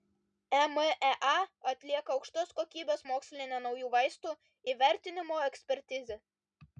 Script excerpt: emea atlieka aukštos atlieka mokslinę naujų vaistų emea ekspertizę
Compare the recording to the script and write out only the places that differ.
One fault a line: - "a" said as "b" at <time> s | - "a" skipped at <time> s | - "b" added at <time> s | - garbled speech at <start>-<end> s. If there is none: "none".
- "atlieka" said as "kokybės" at 2.6 s
- "emea" said as "įvertinimo" at 4.7 s